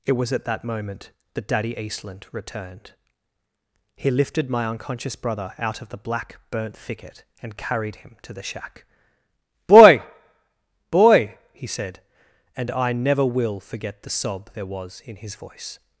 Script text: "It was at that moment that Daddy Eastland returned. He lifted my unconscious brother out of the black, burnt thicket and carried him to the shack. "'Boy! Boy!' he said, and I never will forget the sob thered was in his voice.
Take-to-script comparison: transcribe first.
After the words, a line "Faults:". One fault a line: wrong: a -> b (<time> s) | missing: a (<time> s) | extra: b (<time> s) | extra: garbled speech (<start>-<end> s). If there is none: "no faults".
"It was at that moment that Daddy Eastland returned. He lifted my unconscious brother out of the black, burnt thicket and carried him to the shack. "'Boy! Boy!' he said, and I never will forget the sob there was in his voice.
Faults:
wrong: thered -> there (14.5 s)